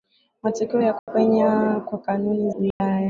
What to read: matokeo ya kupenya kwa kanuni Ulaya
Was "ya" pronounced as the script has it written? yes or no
yes